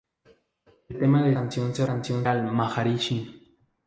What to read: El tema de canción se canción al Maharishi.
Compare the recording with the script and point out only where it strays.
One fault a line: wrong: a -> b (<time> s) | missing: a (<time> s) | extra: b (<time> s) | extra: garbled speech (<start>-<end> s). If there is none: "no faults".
no faults